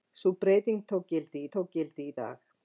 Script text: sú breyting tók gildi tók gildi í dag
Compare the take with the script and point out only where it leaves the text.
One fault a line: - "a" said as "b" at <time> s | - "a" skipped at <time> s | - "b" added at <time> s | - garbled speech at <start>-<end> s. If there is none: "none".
none